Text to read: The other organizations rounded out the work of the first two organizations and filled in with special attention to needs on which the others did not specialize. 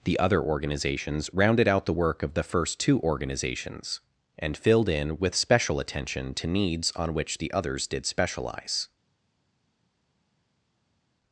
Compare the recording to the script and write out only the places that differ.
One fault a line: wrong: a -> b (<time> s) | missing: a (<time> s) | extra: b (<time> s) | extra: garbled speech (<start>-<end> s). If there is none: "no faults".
missing: not (8.1 s)